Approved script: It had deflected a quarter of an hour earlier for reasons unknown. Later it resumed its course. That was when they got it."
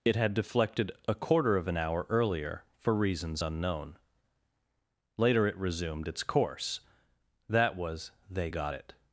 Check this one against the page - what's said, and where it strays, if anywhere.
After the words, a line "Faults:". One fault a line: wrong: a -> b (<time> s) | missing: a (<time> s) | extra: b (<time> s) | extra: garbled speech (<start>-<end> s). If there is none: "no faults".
It had deflected a quarter of an hour earlier for reasons unknown. Later it resumed its course. That was they got it."
Faults:
missing: when (8.1 s)